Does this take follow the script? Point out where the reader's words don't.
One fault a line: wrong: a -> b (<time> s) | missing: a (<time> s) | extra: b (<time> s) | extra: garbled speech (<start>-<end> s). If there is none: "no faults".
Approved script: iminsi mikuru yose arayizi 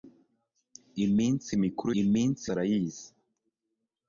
wrong: yose -> iminsi (2.0 s)